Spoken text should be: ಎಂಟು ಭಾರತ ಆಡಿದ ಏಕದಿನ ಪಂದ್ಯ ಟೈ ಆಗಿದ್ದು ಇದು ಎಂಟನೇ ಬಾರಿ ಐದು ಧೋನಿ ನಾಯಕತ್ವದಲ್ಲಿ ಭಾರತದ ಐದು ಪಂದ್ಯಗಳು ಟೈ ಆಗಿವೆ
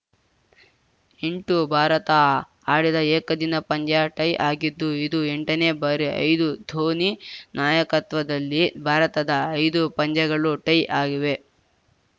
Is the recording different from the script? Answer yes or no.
no